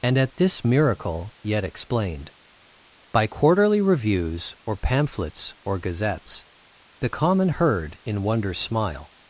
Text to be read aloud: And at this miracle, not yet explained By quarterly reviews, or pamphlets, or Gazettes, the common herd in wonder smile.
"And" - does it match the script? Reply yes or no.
yes